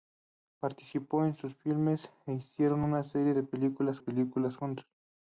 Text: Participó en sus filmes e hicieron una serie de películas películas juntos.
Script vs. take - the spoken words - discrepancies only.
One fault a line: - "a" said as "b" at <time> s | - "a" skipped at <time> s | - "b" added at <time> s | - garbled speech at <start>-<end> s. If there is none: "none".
none